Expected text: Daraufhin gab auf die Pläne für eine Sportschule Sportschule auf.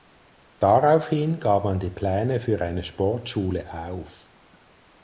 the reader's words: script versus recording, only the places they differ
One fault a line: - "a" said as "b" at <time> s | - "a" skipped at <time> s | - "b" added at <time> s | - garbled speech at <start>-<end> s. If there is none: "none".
- "auf" said as "man" at 1.6 s
- "Sportschule" skipped at 3.7 s